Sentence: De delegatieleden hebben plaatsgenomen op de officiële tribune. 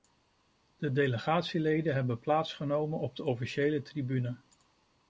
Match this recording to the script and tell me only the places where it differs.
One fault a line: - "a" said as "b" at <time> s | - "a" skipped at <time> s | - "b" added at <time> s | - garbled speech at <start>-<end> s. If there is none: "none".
none